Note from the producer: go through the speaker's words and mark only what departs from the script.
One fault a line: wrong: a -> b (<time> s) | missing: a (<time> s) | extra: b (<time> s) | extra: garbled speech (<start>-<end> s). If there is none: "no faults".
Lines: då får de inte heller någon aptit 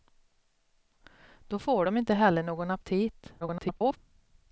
extra: garbled speech (3.4-4.0 s)